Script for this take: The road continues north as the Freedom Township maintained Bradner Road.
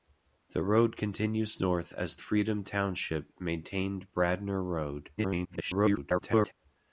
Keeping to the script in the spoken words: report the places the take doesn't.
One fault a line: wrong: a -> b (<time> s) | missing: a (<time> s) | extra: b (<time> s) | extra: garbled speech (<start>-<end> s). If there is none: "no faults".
missing: the (2.2 s)
extra: garbled speech (5.2-6.5 s)